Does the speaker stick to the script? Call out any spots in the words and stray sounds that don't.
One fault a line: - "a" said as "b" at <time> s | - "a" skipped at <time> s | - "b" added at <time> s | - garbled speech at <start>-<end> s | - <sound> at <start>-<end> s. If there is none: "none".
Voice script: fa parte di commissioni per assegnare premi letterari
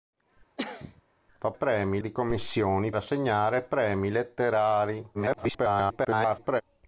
- cough at 0.6-1.0 s
- "parte" said as "premi" at 1.5 s
- "per" skipped at 2.9 s
- garbled speech at 5.1-6.6 s